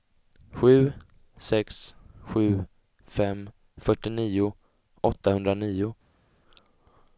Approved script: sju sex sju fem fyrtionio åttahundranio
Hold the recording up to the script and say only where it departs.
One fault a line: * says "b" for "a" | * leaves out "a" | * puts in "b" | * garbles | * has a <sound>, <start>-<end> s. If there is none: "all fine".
all fine